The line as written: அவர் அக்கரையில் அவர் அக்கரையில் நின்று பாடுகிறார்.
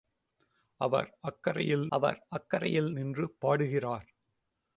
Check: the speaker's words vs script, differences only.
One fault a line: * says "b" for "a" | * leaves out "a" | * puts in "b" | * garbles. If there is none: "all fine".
all fine